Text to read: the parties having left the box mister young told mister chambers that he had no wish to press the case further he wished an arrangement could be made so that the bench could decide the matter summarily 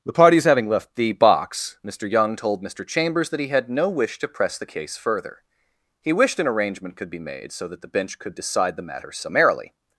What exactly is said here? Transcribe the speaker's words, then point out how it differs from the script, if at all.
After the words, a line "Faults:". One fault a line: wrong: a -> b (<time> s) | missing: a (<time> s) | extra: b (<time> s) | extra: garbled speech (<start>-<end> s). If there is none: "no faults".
the parties having left the box mister young told mister chambers that he had no wish to press the case further he wished an arrangement could be made so that the bench could decide the matter summarily
Faults:
no faults